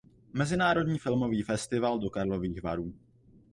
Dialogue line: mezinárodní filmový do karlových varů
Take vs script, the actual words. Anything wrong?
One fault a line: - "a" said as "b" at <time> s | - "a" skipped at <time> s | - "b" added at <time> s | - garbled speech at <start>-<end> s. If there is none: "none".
- "festival" added at 1.4 s